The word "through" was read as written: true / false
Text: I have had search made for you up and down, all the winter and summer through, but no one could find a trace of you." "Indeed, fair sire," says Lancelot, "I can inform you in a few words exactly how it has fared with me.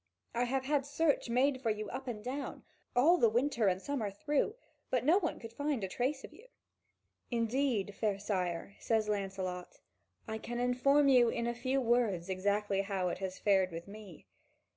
true